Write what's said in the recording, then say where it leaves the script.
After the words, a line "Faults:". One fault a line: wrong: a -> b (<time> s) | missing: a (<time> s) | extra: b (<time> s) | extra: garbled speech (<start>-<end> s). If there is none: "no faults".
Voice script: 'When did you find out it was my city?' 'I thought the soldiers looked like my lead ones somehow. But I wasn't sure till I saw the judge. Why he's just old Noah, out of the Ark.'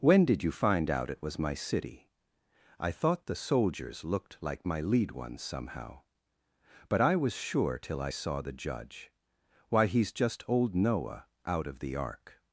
'When did you find out it was my city?' 'I thought the soldiers looked like my lead ones somehow. But I was sure till I saw the judge. Why he's just old Noah, out of the Ark.'
Faults:
wrong: wasn't -> was (7.2 s)